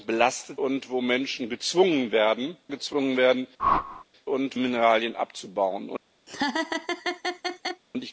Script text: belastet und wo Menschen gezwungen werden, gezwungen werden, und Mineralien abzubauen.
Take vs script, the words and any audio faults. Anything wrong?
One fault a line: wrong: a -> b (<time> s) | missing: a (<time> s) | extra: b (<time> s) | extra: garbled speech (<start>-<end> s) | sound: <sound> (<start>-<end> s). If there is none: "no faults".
sound: whoosh (3.6-4.0 s)
sound: laugh (6.3-7.8 s)